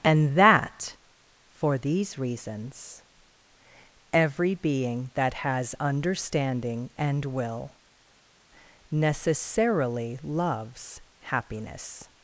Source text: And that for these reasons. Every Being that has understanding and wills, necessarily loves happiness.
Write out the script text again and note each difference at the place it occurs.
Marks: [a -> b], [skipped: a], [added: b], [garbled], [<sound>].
And that for these reasons. Every Being that has understanding and [wills, -> will] necessarily loves happiness.